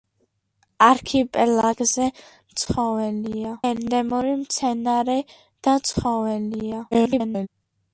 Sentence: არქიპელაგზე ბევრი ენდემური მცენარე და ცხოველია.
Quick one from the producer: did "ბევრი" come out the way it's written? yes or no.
no